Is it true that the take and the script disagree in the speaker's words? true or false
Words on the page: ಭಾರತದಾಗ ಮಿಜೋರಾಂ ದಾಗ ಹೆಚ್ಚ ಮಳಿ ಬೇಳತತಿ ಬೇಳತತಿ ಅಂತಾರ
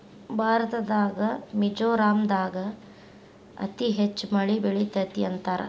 true